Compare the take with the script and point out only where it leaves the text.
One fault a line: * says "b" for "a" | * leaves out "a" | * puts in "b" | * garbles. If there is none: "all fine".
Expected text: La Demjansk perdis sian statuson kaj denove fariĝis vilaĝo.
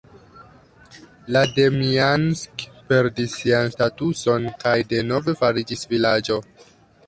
all fine